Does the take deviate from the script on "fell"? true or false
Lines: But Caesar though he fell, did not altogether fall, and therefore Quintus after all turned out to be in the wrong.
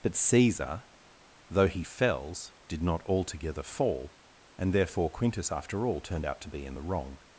true